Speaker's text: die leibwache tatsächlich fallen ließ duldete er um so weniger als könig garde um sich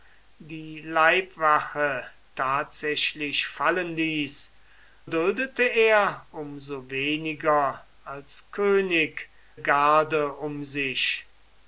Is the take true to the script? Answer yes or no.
yes